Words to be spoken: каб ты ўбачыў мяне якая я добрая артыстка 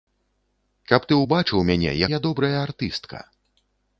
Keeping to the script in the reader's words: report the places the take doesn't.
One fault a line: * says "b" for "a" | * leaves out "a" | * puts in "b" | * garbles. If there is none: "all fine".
* leaves out "якая"